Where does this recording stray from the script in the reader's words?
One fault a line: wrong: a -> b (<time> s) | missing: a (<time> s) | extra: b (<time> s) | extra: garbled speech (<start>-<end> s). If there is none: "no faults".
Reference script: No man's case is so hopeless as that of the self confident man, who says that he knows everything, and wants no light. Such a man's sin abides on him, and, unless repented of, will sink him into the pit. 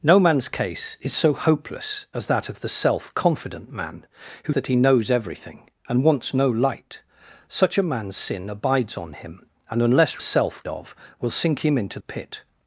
missing: says (4.5 s)
wrong: repented -> self (10.2 s)
missing: the (12.0 s)